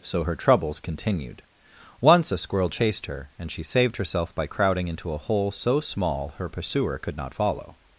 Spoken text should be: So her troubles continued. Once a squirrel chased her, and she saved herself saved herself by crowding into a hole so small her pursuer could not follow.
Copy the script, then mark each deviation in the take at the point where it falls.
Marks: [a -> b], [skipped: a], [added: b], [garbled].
So her troubles continued. Once a squirrel chased her, and she saved herself [skipped: saved herself] by crowding into a hole so small her pursuer could not follow.